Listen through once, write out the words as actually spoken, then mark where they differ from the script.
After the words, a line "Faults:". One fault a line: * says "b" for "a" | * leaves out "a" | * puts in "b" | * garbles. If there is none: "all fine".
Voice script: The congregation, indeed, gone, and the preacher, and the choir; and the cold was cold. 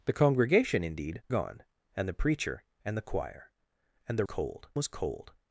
The congregation, indeed, gone, and the preacher, and the choir; and the cold was cold.
Faults:
all fine